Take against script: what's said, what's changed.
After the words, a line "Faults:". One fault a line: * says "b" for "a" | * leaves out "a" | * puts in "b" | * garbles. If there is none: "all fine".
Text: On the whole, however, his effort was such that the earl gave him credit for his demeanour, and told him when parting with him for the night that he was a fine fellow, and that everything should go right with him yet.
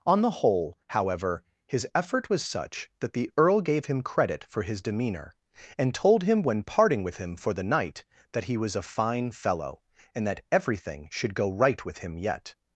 On the whole, however, his effort was such that the earl gave him credit for his demeanour, and told him when parting with him for the night that he was a fine fellow, and that everything should go right with him yet.
Faults:
all fine